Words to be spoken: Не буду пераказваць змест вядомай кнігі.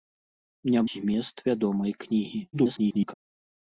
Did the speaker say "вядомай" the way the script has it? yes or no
yes